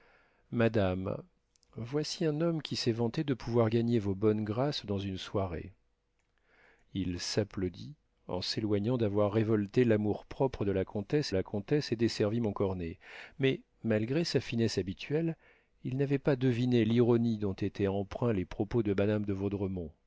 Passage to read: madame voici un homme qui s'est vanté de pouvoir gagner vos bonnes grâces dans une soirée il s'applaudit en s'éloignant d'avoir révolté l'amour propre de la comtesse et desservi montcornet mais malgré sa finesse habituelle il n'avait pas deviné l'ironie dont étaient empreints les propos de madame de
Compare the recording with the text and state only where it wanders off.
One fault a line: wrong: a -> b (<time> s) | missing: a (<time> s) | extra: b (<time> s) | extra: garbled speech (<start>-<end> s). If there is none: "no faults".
extra: la comtesse (11.3 s)